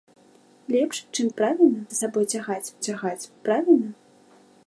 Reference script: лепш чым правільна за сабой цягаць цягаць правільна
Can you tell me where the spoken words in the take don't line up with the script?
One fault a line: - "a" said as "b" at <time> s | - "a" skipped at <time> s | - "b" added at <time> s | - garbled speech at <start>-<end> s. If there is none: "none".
none